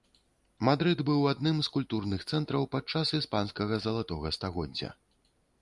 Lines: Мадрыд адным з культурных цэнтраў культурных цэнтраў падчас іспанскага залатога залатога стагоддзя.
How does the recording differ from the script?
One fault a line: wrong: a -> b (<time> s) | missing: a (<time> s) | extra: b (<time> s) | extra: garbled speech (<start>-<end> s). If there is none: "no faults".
extra: быў (1.1 s)
missing: культурных цэнтраў (2.7 s)
missing: залатога (4.3 s)